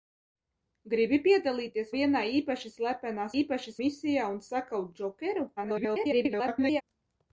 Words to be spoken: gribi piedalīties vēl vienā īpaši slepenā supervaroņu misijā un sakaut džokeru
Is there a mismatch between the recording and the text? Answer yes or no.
yes